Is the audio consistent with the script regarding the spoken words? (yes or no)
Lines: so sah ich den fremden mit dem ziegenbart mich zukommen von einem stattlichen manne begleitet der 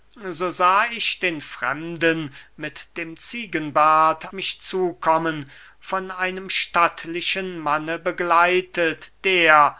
yes